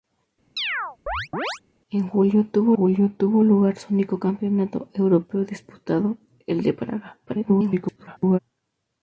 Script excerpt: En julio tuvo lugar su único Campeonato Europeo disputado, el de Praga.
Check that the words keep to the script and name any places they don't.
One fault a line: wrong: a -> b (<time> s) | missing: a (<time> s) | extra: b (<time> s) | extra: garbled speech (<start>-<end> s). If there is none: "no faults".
extra: julio tuvo (2.7 s)
extra: garbled speech (7.3-8.4 s)